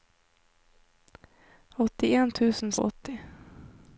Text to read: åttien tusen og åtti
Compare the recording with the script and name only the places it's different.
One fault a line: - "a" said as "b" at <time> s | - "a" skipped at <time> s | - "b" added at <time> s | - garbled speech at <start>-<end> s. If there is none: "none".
none